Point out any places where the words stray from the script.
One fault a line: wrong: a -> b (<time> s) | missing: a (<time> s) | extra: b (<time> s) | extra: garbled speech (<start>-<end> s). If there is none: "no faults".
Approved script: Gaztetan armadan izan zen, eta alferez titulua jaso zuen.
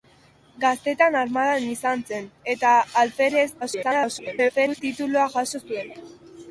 extra: garbled speech (3.6-4.8 s)